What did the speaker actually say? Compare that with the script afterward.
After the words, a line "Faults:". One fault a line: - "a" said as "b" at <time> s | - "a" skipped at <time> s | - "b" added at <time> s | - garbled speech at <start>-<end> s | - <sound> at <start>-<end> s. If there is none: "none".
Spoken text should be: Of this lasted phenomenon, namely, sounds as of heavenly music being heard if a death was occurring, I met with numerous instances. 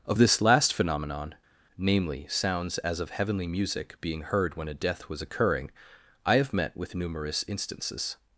Of this last phenomenon, namely, sounds as of heavenly music being heard when a death was occurring, I have met with numerous instances.
Faults:
- "lasted" said as "last" at 0.4 s
- "if" said as "when" at 4.6 s
- "have" added at 6.4 s